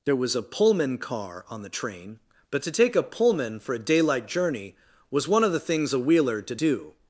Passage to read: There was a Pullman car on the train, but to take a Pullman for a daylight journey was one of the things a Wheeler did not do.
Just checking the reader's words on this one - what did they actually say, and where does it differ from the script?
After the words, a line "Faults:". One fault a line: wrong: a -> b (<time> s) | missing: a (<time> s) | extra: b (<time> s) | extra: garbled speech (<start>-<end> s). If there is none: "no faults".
There was a Pullman car on the train, but to take a Pullman for a daylight journey was one of the things a Wheeler did do.
Faults:
missing: not (6.6 s)